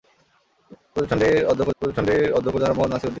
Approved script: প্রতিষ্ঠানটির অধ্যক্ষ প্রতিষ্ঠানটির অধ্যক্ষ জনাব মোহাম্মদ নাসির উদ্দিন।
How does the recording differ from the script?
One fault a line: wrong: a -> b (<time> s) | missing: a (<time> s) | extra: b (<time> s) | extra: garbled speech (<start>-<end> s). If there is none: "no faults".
no faults